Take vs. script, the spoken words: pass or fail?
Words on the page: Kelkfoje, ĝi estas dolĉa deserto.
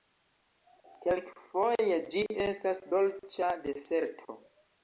pass